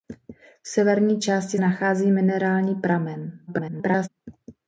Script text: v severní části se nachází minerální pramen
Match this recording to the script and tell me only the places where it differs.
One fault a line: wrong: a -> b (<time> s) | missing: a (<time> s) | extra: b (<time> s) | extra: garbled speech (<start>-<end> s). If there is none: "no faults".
missing: se (1.6 s)
extra: garbled speech (3.5-4.1 s)